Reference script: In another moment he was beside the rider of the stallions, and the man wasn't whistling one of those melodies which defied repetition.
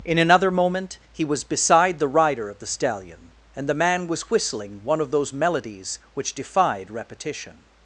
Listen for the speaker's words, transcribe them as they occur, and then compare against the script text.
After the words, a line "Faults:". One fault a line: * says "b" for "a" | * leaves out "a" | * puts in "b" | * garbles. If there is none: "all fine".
In another moment he was beside the rider of the stallion, and the man was whistling one of those melodies which defied repetition.
Faults:
* says "stallion" for "stallions"
* says "was" for "wasn't"